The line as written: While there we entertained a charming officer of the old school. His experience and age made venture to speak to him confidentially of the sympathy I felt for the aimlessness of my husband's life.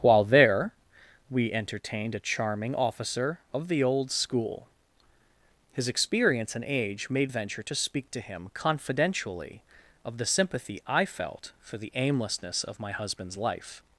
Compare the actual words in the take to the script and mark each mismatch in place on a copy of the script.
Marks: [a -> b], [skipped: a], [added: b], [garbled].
While there we entertained a charming officer of the old school. His experience and age made venture to speak to him confidentially of the sympathy I felt for the aimlessness of my husband's life.